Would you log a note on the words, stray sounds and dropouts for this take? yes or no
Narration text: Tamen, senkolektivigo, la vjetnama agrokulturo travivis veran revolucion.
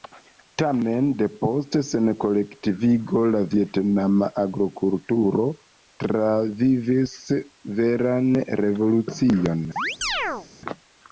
yes